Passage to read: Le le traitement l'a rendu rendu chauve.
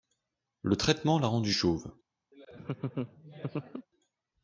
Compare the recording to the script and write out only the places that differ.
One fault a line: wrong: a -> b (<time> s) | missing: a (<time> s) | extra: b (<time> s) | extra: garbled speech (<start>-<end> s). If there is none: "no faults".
missing: le (0.8 s)
missing: rendu (1.5 s)